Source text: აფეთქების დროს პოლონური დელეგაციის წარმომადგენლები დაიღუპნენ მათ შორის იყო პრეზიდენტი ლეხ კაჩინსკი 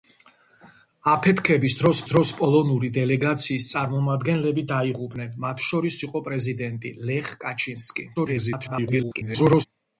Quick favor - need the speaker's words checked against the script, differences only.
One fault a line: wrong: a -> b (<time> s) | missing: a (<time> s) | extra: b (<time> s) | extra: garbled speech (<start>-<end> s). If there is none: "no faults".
extra: დროს (2.1 s)
extra: garbled speech (8.1-9.7 s)